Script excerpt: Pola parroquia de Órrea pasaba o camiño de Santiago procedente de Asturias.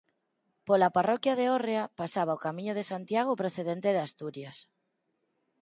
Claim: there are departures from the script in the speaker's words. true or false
false